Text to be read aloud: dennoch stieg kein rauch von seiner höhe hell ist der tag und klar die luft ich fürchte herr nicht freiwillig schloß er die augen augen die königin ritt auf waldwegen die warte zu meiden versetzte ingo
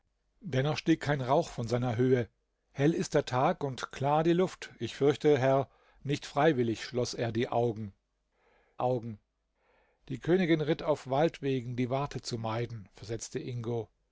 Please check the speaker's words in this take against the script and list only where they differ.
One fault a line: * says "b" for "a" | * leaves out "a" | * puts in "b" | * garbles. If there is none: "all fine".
all fine